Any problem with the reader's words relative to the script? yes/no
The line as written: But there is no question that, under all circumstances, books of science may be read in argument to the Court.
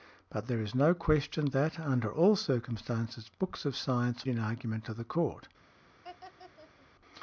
yes